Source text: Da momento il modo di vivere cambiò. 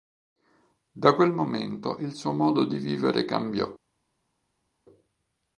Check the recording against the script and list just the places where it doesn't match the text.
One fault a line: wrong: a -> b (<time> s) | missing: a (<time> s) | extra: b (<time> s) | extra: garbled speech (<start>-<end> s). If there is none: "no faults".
extra: quel (1.1 s)
extra: suo (2.1 s)